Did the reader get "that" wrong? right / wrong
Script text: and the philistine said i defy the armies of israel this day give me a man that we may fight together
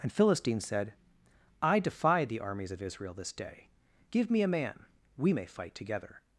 wrong